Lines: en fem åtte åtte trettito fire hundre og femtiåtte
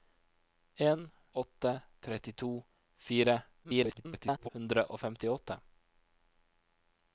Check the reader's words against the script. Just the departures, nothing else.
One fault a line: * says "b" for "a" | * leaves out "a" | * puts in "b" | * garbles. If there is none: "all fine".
* leaves out "fem åtte"
* garbles